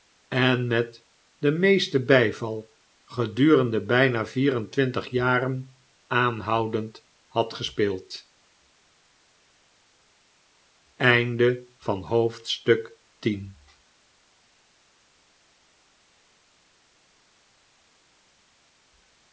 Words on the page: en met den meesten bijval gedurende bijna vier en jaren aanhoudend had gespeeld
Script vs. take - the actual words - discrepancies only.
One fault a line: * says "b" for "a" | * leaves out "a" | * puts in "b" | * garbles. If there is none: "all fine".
* puts in "twintig"